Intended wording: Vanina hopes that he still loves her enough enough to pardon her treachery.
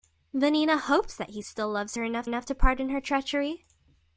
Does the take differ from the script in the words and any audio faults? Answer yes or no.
no